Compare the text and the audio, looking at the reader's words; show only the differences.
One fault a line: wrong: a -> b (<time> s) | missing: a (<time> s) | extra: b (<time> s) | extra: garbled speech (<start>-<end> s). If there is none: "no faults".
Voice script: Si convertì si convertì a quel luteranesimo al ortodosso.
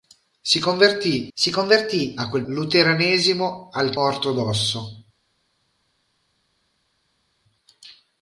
no faults